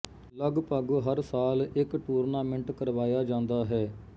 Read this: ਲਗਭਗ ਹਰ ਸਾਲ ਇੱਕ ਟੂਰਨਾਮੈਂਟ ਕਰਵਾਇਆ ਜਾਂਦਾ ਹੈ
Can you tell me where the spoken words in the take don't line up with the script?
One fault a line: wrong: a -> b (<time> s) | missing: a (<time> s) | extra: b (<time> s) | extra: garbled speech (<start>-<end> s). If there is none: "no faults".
no faults